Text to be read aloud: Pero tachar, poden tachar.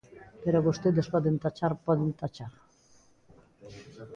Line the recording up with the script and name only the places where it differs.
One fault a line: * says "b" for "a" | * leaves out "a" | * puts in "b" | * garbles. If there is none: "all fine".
* puts in "vostedes poden"